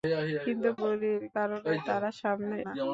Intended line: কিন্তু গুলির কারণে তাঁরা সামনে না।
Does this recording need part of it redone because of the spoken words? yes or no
no